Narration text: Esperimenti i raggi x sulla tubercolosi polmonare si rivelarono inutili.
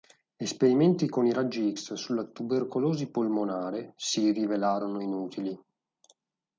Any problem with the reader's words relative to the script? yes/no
yes